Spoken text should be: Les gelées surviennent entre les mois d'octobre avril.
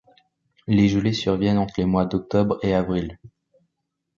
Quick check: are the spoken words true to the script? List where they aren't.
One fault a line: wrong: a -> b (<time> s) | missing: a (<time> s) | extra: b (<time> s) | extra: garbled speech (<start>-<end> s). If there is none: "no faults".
extra: et (2.6 s)